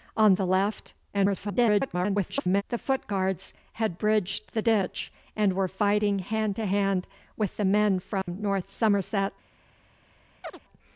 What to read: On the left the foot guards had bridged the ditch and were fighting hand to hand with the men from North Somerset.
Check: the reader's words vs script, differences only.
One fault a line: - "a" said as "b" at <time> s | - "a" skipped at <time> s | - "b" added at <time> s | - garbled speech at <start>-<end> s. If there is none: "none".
- garbled speech at 1.1-2.6 s